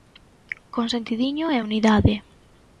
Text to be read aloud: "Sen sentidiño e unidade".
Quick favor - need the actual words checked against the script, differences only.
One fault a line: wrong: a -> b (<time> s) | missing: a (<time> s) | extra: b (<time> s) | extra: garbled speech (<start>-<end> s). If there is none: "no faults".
wrong: Sen -> Con (0.7 s)